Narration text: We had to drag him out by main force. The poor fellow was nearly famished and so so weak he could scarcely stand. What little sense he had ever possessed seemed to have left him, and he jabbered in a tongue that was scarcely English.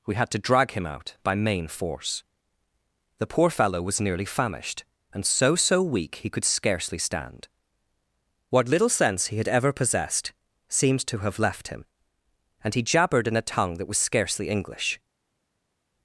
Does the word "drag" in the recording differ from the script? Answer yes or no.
no